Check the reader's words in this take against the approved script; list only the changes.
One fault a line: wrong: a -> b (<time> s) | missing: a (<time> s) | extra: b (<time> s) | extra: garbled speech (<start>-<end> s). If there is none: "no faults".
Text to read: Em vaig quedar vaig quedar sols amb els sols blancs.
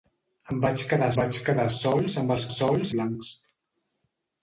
no faults